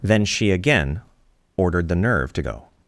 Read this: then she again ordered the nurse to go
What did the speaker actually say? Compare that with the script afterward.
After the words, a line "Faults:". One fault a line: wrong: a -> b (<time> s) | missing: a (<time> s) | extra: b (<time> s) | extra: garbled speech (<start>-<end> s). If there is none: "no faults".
then she again ordered the nerve to go
Faults:
wrong: nurse -> nerve (1.9 s)